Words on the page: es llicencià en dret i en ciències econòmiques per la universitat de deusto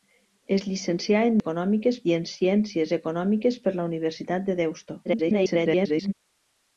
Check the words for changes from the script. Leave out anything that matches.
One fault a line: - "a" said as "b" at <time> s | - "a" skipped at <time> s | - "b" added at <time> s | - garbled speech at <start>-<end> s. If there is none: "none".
- "dret" said as "econòmiques" at 1.4 s
- garbled speech at 5.0-6.1 s